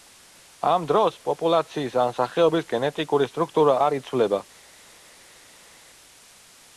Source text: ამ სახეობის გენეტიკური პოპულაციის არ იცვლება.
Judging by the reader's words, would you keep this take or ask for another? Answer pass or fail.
fail